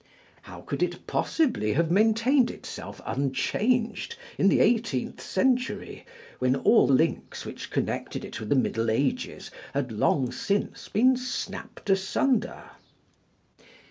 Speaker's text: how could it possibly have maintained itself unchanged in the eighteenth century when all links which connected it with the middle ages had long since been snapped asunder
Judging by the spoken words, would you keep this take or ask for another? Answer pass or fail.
pass